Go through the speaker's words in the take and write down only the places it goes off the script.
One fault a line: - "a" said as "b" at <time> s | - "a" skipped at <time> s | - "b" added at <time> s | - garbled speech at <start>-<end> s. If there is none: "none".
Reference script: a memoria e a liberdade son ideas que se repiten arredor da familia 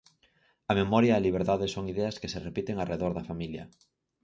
none